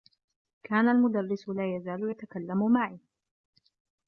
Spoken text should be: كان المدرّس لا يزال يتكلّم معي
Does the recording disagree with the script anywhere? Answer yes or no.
no